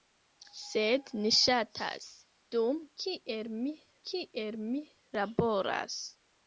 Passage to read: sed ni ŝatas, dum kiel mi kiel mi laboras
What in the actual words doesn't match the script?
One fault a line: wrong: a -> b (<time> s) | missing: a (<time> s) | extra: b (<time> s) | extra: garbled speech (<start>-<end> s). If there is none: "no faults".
no faults